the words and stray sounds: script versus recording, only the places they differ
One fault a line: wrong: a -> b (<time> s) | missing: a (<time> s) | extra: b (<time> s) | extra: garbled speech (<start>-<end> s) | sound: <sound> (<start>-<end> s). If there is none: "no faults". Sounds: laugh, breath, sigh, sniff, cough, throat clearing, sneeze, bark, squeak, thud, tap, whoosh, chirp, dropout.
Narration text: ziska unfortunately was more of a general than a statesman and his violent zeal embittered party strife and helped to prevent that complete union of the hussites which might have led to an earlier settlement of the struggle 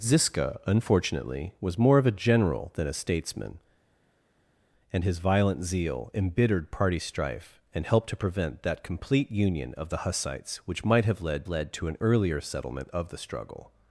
extra: led (11.5 s)